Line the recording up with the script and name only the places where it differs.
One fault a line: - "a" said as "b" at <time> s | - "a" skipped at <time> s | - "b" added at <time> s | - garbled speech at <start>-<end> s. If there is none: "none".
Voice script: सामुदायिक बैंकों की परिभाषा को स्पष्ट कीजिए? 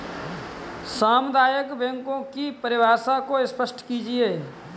none